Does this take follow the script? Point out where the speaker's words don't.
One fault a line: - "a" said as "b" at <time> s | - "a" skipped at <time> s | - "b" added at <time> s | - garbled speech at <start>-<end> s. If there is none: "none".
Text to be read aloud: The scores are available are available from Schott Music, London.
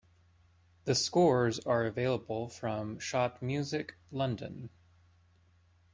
- "are available" skipped at 2.5 s